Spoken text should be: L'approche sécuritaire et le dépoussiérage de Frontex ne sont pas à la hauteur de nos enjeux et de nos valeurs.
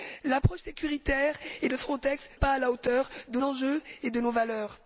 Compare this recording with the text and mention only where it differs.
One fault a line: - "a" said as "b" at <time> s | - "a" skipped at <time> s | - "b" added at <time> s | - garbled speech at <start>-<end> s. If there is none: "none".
- "le dépoussiérage" skipped at 1.7 s
- "ne sont" skipped at 2.3 s
- "nos" skipped at 3.4 s